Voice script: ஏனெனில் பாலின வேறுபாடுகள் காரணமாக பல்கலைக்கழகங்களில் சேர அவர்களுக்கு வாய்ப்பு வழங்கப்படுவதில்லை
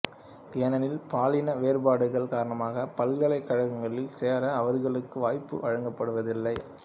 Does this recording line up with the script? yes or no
yes